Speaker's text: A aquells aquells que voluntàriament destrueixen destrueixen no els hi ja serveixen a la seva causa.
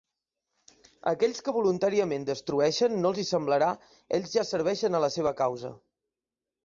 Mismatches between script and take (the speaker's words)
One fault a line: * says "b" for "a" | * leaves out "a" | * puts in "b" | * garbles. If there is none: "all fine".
* leaves out "aquells"
* leaves out "destrueixen"
* puts in "semblarà ells"